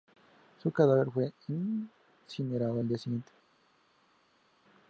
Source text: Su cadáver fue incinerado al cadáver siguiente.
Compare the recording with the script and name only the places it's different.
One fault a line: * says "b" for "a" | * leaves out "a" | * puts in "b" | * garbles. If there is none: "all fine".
* says "día" for "cadáver"